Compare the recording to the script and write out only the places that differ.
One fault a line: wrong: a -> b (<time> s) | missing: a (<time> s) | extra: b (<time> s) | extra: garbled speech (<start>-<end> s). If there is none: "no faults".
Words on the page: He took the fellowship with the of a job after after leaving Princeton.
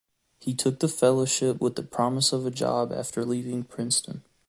extra: promise (1.8 s)
missing: after (3.2 s)